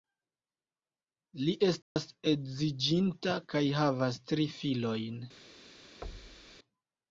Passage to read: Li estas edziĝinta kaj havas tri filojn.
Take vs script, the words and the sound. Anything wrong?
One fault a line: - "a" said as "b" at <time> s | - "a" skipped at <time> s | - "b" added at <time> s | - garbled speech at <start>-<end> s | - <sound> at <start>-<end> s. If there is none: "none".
- dropout at 1.8-2.0 s
- thud at 6.0-6.6 s